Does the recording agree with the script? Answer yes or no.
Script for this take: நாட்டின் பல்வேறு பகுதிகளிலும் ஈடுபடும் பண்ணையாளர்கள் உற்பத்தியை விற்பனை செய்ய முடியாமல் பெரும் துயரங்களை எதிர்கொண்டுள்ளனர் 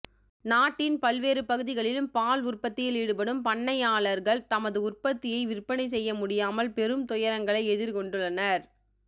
no